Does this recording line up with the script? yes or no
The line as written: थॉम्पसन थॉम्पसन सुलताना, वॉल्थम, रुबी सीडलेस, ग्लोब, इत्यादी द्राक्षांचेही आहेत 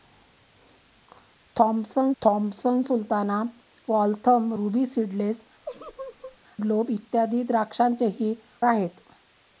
yes